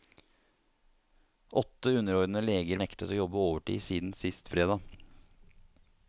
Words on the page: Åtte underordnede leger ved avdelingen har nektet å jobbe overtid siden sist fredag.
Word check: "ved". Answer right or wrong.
wrong